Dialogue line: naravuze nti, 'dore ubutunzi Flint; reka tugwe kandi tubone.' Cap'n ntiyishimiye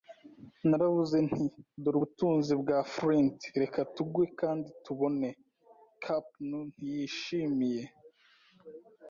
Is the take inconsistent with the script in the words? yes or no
yes